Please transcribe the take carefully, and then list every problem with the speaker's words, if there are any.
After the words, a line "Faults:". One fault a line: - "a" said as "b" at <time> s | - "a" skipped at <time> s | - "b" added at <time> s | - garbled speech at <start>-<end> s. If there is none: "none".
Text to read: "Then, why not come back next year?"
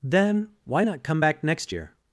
"Then, why not come back next year?"
Faults:
none